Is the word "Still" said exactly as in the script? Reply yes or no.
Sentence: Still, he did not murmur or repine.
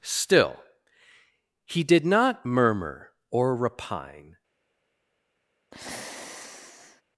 yes